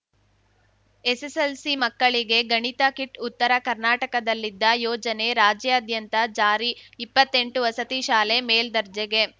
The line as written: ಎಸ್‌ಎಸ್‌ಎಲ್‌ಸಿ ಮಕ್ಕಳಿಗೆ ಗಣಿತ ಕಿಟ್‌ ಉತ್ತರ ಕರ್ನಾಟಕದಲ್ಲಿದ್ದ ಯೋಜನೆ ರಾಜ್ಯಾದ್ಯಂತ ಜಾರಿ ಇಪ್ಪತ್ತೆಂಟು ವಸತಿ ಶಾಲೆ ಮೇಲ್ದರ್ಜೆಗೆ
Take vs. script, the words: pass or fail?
pass